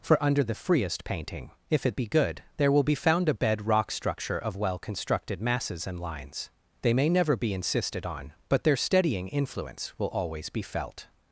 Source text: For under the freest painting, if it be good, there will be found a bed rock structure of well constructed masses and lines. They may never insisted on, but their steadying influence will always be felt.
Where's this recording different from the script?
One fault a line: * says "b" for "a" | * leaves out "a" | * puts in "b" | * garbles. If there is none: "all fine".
* puts in "be"